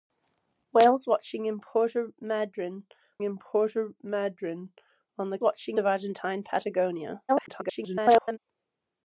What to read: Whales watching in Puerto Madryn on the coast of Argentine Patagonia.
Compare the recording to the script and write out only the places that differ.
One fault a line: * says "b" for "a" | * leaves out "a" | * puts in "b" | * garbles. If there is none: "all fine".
* puts in "in Puerto Madryn"
* says "watching" for "coast"
* garbles